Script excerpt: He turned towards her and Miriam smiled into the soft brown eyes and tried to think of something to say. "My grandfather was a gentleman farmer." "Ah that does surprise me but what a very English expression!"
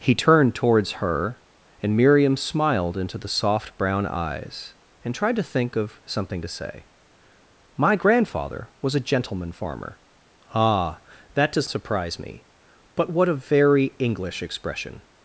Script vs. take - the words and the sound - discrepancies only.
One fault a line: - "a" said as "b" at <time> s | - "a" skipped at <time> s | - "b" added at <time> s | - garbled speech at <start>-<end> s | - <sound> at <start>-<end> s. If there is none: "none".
none